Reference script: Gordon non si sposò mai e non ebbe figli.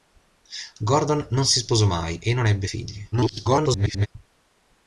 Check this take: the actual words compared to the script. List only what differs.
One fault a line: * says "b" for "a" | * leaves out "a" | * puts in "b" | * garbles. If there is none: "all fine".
* garbles